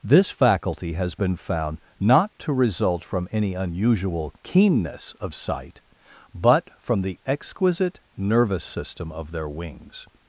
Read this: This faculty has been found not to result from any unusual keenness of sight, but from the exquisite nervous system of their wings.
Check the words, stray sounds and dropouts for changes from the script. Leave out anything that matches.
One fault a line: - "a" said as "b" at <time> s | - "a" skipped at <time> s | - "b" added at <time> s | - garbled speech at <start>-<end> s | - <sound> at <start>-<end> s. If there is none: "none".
none